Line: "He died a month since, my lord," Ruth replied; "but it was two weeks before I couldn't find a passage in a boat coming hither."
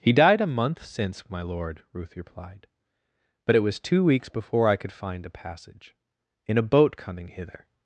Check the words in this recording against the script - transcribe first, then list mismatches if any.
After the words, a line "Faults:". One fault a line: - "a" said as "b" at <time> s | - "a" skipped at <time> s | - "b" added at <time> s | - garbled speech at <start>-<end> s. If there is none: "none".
"He died a month since, my lord," Ruth replied; "but it was two weeks before I could find a passage in a boat coming hither."
Faults:
- "couldn't" said as "could" at 4.8 s